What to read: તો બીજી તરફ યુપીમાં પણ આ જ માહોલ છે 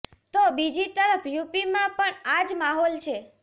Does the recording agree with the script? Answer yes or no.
yes